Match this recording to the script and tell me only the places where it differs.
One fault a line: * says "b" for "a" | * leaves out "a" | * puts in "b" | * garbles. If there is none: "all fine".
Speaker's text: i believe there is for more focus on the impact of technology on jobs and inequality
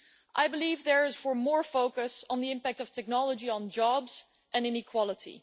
all fine